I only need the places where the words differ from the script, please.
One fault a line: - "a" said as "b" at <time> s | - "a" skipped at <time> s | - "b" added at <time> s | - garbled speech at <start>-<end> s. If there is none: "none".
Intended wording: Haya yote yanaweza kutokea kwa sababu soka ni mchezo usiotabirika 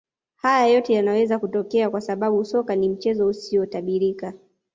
none